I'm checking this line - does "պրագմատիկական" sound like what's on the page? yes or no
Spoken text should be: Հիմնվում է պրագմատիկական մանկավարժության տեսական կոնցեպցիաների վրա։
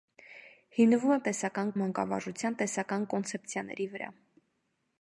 no